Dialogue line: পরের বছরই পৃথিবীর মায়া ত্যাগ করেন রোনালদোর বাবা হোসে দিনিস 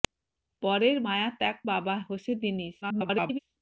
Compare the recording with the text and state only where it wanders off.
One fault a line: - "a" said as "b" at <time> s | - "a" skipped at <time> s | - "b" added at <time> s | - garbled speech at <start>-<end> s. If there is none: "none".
- "বছরই পৃথিবীর" skipped at 1.0 s
- "করেন রোনালদোর" skipped at 1.6 s
- garbled speech at 2.8-3.4 s